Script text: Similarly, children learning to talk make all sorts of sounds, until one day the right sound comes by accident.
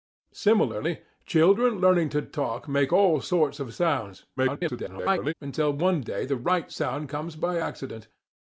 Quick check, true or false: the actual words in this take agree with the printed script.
false